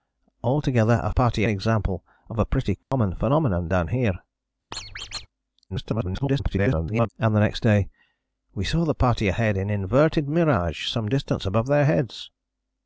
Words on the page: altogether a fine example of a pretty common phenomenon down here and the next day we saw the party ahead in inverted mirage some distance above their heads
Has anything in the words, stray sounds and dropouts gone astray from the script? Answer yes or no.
yes